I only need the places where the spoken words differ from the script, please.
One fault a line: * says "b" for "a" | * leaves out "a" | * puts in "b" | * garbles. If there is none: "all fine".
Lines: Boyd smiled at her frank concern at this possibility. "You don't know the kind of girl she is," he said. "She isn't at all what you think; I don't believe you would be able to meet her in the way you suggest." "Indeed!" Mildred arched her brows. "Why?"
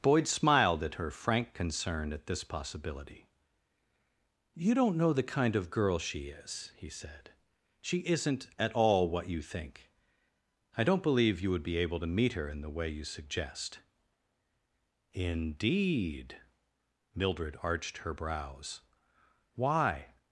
all fine